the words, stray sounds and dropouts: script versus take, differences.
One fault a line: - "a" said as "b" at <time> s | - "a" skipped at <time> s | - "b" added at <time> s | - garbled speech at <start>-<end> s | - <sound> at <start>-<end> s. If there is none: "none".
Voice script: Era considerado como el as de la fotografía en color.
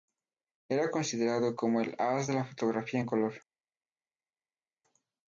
none